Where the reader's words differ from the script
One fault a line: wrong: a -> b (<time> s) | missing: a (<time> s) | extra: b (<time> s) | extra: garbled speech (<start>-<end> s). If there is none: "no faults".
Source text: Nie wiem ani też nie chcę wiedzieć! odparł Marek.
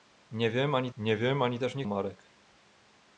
wrong: też nie chcę wiedzieć odparł -> nie wiem ani też nie (1.0 s)